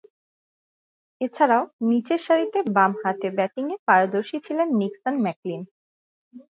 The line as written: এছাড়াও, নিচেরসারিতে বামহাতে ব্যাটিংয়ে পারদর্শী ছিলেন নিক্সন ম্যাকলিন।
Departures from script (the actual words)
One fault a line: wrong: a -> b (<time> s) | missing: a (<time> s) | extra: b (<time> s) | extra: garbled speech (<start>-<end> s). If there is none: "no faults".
no faults